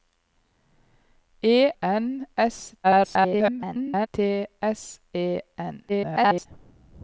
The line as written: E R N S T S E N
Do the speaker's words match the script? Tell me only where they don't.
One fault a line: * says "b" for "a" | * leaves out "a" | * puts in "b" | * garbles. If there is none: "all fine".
* leaves out "R"
* garbles
* garbles